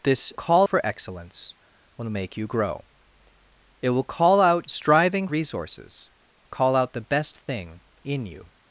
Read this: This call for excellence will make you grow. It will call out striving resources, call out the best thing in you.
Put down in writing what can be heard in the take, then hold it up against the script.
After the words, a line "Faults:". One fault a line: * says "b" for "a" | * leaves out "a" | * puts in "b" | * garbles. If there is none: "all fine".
This call for excellence will make you grow. It will call out striving resources, call out the best thing in you.
Faults:
all fine